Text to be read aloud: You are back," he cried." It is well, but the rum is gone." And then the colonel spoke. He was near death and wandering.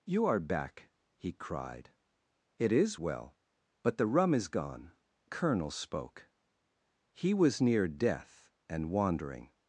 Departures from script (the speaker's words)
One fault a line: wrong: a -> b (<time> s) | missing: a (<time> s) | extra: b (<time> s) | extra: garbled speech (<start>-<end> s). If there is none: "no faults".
missing: And then the (4.9 s)